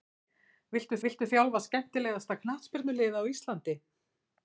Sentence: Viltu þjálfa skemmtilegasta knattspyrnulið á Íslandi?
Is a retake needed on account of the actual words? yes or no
yes